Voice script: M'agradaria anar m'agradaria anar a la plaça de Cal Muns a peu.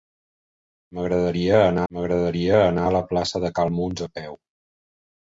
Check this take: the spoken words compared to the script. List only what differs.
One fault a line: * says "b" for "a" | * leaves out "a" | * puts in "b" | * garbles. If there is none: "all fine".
all fine